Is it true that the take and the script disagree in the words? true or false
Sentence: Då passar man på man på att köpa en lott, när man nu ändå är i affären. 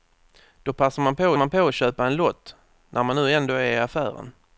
false